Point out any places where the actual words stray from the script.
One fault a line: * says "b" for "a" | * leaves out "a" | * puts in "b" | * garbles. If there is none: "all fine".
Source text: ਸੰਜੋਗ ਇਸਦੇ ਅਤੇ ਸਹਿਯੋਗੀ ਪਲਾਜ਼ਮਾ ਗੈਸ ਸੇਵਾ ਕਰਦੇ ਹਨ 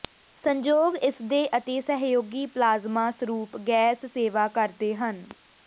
* puts in "ਸਰੂਪ"